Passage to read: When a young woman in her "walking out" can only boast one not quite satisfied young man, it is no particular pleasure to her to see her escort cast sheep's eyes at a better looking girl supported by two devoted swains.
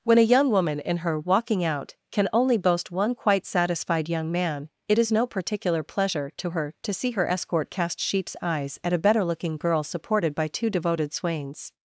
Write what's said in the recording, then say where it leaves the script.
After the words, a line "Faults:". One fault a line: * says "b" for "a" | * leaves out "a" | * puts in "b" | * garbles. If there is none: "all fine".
When a young woman in her "walking out" can only boast one quite satisfied young man, it is no particular pleasure to her to see her escort cast sheep's eyes at a better looking girl supported by two devoted swains.
Faults:
* leaves out "not"